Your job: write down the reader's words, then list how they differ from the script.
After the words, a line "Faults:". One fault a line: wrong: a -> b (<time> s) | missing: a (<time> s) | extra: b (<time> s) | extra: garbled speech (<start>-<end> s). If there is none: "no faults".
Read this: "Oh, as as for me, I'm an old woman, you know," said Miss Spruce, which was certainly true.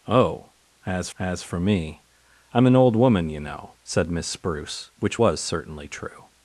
"Oh, as as for me, I'm an old woman, you know," said Miss Spruce, which was certainly true.
Faults:
no faults